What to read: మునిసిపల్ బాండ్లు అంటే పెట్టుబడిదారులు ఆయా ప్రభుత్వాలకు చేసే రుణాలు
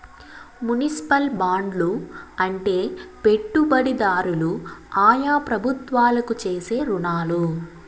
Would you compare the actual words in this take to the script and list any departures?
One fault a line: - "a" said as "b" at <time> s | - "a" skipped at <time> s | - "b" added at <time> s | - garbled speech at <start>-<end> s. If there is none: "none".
none